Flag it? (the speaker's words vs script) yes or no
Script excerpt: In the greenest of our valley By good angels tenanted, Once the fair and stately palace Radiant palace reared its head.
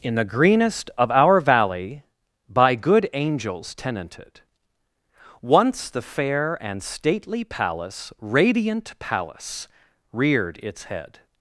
no